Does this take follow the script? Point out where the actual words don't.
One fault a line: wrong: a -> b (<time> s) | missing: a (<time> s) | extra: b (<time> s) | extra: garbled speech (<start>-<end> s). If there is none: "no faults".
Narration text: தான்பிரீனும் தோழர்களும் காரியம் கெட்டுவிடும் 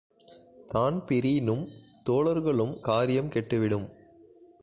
no faults